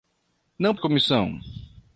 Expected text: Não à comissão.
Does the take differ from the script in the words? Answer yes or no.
no